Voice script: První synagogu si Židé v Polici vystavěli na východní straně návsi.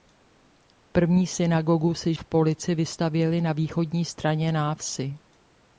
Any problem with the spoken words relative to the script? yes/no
yes